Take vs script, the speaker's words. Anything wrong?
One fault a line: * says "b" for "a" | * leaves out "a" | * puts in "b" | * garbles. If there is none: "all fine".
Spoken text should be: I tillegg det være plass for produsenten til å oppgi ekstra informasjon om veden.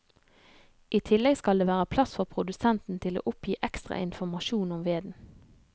* puts in "skal"